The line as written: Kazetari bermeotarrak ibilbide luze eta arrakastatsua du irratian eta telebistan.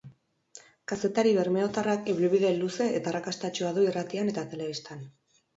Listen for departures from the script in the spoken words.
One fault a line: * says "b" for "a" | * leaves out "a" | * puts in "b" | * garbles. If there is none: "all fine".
all fine